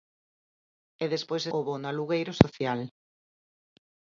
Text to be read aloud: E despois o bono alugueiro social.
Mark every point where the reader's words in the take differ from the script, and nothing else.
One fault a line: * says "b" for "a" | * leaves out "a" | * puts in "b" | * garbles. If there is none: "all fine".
all fine